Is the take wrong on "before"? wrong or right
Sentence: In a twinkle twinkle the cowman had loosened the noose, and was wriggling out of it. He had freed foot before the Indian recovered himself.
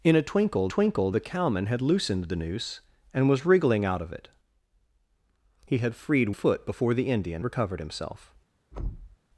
right